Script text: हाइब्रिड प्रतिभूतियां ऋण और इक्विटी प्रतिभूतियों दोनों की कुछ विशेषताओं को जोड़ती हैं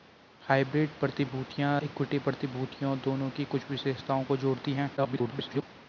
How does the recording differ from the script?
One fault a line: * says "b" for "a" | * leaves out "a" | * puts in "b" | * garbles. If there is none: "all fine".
* leaves out "ऋण और"
* garbles